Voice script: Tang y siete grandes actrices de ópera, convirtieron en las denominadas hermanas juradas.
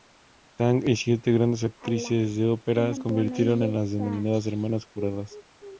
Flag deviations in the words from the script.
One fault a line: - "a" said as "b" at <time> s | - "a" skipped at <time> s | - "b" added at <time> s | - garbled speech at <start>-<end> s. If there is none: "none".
none